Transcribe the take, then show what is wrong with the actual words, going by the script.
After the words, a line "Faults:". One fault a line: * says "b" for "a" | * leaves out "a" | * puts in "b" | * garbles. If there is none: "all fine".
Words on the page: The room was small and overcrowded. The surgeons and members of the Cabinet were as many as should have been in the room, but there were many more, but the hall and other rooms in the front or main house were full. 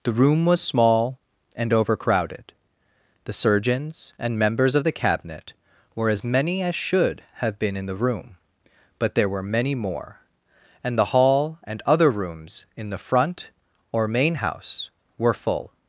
The room was small and overcrowded. The surgeons and members of the Cabinet were as many as should have been in the room, but there were many more, and the hall and other rooms in the front or main house were full.
Faults:
* says "and" for "but"